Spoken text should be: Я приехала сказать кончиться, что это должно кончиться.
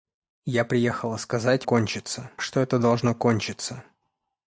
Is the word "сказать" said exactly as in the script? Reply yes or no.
yes